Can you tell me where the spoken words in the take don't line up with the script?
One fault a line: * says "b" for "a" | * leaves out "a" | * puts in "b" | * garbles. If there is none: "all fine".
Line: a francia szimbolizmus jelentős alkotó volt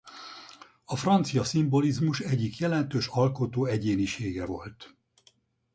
* puts in "egyik"
* puts in "egyénisége"